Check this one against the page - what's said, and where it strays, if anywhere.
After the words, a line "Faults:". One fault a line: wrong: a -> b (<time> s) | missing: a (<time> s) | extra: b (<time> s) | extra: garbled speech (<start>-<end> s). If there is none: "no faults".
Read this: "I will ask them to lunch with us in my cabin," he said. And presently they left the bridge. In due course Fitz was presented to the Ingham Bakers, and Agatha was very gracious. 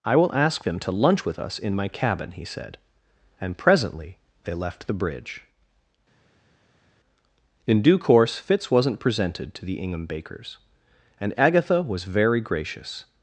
"I will ask them to lunch with us in my cabin," he said. And presently they left the bridge. In due course Fitz wasn't presented to the Ingham Bakers, and Agatha was very gracious.
Faults:
wrong: was -> wasn't (8.7 s)